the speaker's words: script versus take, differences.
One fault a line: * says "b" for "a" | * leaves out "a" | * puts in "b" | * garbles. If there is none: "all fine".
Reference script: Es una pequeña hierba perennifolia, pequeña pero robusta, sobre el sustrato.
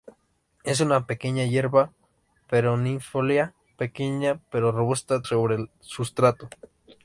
all fine